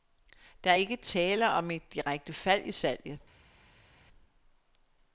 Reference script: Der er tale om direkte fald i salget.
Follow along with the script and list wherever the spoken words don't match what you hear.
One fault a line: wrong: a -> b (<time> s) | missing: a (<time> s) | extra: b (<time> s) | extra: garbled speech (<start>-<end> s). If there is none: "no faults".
extra: ikke (0.7 s)
extra: et (1.7 s)